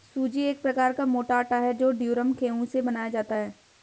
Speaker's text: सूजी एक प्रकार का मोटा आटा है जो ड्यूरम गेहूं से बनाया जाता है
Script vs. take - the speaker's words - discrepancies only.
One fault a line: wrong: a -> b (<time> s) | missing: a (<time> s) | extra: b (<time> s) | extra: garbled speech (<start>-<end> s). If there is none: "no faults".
no faults